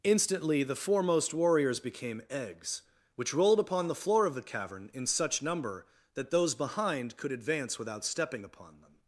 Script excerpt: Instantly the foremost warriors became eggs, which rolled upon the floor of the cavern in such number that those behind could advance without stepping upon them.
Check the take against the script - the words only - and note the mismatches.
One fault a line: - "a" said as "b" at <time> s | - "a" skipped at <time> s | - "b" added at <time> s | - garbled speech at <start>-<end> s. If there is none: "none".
none